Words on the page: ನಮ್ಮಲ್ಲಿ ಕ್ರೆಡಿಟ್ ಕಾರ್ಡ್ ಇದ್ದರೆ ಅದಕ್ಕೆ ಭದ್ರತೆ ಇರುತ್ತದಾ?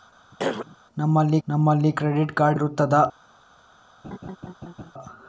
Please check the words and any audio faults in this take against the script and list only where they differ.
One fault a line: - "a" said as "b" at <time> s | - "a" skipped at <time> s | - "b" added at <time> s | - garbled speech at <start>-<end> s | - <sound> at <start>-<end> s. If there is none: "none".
- throat clearing at 0.3-0.8 s
- "ನಮ್ಮಲ್ಲಿ" added at 1.5 s
- "ಇದ್ದರೆ ಅದಕ್ಕೆ ಭದ್ರತೆ" skipped at 2.6 s
- laugh at 4.0-4.9 s